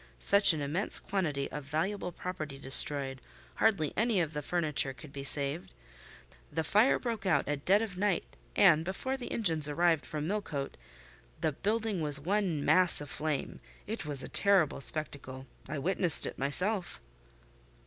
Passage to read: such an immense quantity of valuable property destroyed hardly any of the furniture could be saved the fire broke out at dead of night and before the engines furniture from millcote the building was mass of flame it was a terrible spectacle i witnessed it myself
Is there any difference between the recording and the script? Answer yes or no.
yes